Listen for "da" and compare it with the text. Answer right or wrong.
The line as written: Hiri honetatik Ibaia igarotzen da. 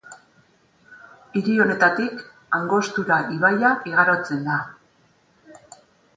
right